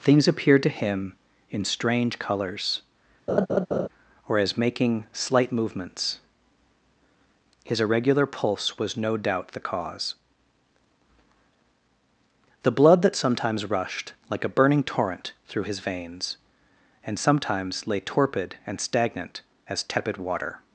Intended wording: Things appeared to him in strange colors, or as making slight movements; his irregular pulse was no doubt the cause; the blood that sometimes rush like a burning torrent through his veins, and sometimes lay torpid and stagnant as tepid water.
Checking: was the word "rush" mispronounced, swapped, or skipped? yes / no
yes